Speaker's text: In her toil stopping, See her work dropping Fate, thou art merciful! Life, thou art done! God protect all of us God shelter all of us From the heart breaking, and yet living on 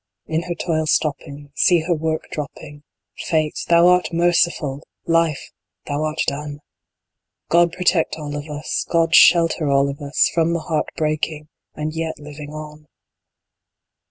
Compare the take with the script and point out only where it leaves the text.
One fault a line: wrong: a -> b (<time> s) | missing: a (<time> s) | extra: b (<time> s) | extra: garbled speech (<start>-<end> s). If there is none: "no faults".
no faults